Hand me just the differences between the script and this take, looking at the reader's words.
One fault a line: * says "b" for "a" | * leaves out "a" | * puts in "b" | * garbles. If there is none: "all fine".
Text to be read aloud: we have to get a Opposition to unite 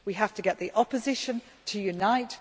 * says "the" for "a"